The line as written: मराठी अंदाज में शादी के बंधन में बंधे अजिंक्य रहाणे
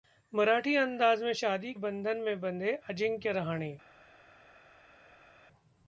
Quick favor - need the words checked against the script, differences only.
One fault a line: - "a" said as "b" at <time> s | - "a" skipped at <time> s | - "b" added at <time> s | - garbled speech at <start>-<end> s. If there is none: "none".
- "के" skipped at 1.7 s